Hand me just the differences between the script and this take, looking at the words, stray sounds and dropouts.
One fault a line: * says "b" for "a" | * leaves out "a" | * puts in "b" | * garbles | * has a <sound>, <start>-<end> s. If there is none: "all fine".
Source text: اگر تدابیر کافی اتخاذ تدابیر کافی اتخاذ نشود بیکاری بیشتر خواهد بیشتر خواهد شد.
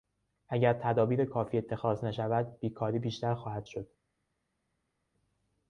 * leaves out "تدابیر کافی اتخاذ"
* leaves out "بیشتر خواهد"